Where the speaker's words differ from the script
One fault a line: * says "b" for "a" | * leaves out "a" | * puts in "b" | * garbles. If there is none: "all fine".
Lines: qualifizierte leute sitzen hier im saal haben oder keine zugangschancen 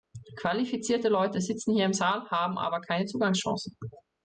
* says "aber" for "oder"